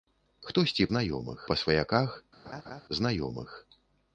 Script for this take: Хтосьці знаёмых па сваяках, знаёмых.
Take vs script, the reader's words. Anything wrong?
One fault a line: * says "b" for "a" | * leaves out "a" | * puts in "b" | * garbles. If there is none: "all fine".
all fine